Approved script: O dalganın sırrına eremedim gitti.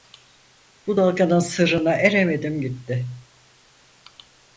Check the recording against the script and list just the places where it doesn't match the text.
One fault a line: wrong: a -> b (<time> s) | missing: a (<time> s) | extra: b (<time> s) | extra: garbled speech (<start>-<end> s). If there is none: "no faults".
wrong: O -> Bu (0.9 s)